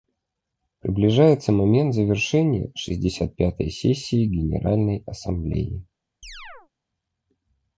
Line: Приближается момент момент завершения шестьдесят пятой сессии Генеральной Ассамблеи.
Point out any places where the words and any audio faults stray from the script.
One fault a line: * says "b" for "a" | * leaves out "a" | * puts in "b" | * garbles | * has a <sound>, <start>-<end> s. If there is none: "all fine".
* leaves out "момент"
* has a chirp, 6.2-6.7 s